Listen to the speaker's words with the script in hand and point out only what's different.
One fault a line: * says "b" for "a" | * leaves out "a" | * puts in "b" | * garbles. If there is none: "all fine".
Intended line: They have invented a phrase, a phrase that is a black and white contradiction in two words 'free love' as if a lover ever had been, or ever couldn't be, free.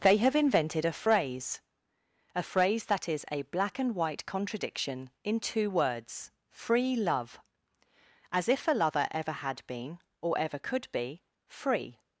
* says "could" for "couldn't"